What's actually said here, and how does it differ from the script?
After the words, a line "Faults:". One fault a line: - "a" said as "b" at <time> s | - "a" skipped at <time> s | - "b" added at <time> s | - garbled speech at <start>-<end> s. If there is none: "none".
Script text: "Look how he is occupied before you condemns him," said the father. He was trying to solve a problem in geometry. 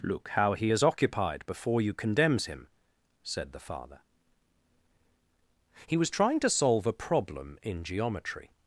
"Look how he is occupied before you condemns him," said the father. He was trying to solve a problem in geometry.
Faults:
none